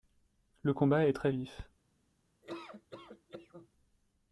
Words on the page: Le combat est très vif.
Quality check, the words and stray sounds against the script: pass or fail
fail